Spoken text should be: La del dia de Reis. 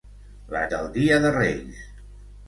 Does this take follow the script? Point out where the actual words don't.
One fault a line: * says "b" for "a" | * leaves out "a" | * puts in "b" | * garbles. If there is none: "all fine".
all fine